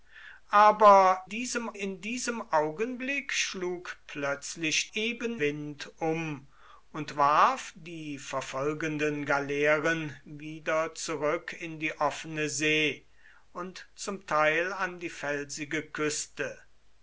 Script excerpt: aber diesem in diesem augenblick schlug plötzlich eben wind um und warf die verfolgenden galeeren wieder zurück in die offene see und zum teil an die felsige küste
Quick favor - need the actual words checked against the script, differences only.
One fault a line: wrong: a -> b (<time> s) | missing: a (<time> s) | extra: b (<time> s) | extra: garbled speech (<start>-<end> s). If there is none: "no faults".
no faults